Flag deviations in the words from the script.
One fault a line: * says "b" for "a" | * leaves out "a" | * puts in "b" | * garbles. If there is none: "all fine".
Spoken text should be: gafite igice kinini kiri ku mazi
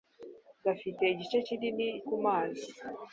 * leaves out "kiri"